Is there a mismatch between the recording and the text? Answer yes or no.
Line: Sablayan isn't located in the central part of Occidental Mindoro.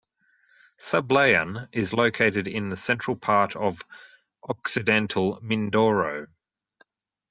yes